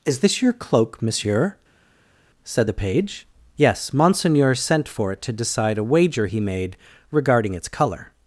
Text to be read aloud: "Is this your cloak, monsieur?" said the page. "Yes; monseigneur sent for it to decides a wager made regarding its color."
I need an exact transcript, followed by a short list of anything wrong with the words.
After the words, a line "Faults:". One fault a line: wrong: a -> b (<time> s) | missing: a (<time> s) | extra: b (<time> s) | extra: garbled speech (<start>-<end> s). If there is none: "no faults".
"Is this your cloak, monsieur?" said the page. "Yes; monseigneur sent for it to decide a wager he made regarding its color."
Faults:
wrong: decides -> decide (5.3 s)
extra: he (6.2 s)